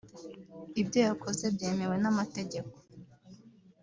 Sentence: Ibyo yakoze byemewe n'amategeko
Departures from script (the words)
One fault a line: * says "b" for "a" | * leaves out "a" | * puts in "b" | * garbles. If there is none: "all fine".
all fine